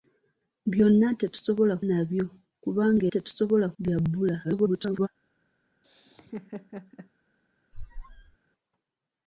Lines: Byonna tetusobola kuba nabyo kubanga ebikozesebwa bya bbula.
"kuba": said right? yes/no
no